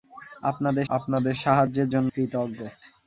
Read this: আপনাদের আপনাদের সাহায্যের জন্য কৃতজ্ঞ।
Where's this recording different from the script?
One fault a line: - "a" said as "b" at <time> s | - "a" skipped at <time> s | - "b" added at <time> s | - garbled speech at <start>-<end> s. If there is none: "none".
none